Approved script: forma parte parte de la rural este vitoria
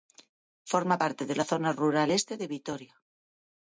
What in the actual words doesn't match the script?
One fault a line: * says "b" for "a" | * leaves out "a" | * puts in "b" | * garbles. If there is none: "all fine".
* leaves out "parte"
* puts in "zona"
* puts in "de"